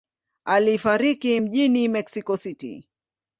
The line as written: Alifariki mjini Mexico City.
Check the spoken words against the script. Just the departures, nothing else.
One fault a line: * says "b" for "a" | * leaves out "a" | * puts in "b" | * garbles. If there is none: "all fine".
all fine